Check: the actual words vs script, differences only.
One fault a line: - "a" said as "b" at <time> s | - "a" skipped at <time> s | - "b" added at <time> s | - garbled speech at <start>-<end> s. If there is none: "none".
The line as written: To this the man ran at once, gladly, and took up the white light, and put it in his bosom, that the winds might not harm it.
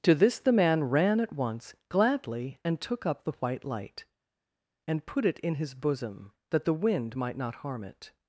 - "winds" said as "wind" at 6.7 s